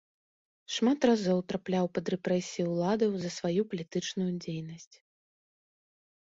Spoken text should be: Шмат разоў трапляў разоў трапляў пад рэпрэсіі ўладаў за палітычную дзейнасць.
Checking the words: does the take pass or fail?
fail